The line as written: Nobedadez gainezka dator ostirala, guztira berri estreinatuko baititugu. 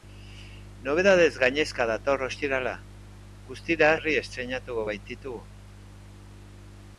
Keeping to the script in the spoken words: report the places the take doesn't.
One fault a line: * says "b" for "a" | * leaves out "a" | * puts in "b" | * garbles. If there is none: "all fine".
all fine